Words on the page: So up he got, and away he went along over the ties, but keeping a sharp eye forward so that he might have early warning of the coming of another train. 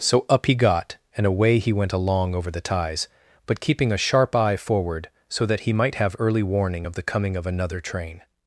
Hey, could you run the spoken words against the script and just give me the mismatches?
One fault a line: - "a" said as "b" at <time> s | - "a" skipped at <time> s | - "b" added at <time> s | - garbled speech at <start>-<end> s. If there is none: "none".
none